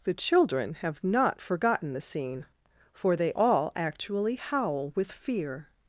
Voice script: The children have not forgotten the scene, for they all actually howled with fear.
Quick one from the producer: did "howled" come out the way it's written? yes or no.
no